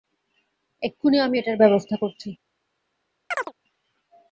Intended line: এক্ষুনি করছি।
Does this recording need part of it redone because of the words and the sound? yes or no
yes